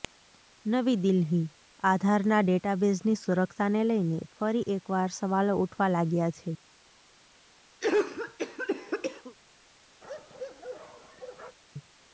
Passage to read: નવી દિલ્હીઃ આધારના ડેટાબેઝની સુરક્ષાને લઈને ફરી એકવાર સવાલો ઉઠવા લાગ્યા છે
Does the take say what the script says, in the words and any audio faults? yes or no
no